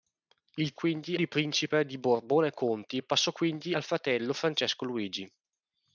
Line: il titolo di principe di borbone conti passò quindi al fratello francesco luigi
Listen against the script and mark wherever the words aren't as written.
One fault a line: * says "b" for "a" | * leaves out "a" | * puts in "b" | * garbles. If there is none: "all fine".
* says "quindi" for "titolo"